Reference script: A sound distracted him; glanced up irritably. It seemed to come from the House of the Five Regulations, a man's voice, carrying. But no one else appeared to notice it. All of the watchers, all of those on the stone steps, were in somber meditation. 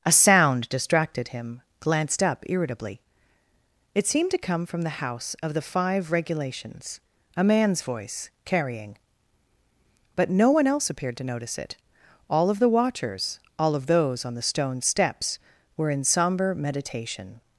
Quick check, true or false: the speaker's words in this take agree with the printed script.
true